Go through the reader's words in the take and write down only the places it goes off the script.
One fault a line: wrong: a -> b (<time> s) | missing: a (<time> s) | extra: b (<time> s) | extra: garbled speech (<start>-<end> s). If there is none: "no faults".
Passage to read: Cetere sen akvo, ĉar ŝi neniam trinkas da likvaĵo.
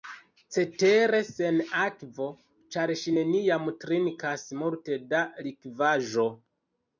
extra: multe (4.6 s)